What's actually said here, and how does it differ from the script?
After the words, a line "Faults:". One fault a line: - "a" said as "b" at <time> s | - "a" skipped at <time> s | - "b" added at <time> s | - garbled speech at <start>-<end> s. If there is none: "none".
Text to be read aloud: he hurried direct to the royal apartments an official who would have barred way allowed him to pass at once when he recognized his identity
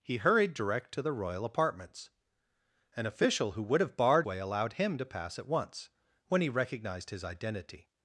he hurried direct to the royal apartments an official who would have barred way allowed him to pass at once when he recognized his identity
Faults:
none